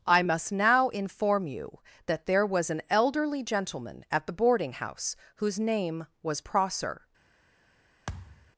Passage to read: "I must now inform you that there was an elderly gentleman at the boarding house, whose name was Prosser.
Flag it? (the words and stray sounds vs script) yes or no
yes